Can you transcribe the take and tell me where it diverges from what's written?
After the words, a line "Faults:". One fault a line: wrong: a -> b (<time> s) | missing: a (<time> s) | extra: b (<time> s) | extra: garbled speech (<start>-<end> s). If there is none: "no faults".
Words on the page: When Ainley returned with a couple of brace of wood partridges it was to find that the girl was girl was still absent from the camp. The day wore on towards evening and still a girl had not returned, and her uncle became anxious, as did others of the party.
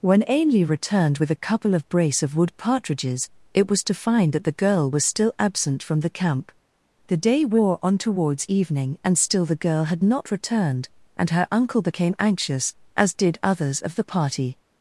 When Ainley returned with a couple of brace of wood partridges it was to find that the girl was still absent from the camp. The day wore on towards evening and still the girl had not returned, and her uncle became anxious, as did others of the party.
Faults:
missing: girl was (5.0 s)
wrong: a -> the (9.5 s)